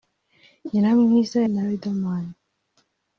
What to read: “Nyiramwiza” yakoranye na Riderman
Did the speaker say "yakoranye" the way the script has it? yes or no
no